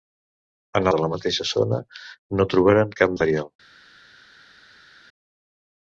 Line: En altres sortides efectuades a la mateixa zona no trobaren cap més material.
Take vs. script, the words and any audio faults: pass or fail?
fail